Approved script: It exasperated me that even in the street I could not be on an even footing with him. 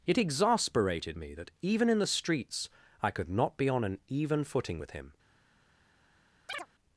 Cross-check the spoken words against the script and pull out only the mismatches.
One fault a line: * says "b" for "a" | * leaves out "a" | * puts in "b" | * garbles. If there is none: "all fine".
* says "streets" for "street"